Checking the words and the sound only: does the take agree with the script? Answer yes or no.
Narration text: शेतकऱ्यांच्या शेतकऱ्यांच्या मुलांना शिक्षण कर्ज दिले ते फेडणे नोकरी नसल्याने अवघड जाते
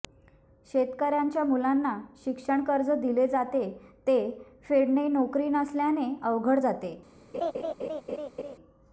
no